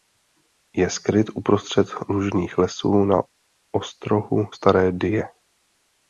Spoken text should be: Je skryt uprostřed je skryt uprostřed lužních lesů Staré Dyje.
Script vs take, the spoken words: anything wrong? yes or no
yes